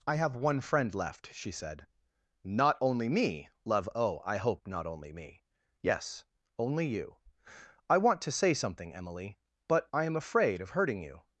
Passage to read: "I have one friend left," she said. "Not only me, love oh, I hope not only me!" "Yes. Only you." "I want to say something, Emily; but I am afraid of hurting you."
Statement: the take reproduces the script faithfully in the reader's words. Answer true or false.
true